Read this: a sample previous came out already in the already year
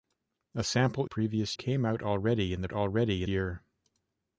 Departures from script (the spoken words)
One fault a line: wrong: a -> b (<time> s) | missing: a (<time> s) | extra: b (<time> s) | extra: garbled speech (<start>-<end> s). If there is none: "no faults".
no faults